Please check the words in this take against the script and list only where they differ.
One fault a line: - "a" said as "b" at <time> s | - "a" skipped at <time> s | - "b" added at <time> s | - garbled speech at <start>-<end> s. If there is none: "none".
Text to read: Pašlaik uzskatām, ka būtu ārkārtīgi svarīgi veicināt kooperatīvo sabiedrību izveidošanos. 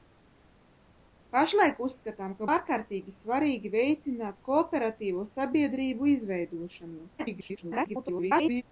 - "būtu" skipped at 2.5 s
- garbled speech at 7.2-8.6 s